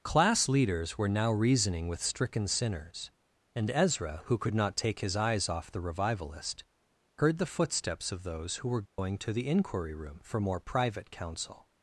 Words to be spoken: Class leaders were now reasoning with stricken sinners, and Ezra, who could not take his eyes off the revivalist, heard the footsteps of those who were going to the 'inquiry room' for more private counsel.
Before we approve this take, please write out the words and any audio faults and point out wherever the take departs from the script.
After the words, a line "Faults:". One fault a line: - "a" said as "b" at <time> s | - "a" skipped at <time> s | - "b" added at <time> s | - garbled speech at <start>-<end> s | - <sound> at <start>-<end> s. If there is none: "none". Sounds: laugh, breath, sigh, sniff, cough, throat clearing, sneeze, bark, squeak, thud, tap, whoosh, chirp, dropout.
Class leaders were now reasoning with stricken sinners, and Ezra, who could not take his eyes off the revivalist, heard the footsteps of those who were going to the 'inquiry room' for more private counsel.
Faults:
- dropout at 8.9-9.0 s